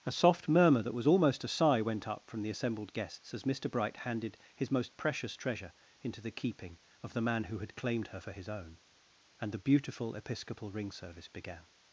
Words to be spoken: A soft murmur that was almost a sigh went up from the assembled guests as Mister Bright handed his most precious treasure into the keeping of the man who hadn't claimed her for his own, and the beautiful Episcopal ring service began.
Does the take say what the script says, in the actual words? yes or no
no